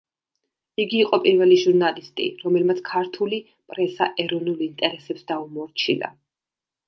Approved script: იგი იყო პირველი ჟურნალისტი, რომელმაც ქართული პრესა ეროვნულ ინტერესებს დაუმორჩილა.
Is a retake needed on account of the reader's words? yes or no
no